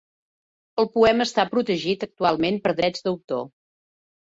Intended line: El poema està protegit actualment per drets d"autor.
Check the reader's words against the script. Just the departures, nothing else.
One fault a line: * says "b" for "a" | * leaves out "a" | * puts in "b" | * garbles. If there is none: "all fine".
all fine